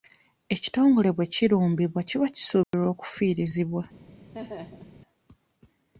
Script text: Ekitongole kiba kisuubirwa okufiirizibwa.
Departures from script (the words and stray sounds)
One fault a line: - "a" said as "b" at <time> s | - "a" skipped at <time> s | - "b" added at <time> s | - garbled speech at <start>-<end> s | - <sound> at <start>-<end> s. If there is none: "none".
- "bwe kirumbibwa" added at 1.1 s
- dropout at 2.6-2.7 s
- laugh at 4.3-5.0 s